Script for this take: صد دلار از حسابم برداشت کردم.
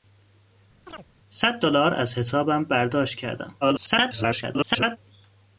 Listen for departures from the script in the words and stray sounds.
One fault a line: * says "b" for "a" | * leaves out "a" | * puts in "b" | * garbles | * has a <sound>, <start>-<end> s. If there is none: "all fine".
* has a chirp, 0.9-1.1 s
* garbles